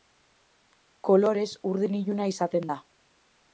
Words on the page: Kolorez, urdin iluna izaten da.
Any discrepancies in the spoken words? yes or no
no